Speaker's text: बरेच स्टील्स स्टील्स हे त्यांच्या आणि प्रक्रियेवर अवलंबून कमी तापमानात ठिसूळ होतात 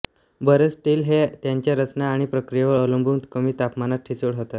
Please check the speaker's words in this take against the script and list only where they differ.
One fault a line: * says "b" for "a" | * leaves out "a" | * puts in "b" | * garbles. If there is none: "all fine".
* leaves out "स्टील्स"
* puts in "रचना"